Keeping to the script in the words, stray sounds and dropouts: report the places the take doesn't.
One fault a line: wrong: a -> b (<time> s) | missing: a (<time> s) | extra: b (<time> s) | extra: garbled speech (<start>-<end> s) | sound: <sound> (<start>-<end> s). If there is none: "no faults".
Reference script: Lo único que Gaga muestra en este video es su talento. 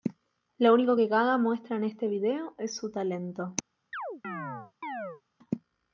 sound: chirp (3.9-5.2 s)